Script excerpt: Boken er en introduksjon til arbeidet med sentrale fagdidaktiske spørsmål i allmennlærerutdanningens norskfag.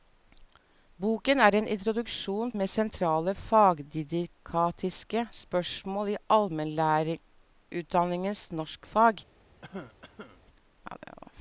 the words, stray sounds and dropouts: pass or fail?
fail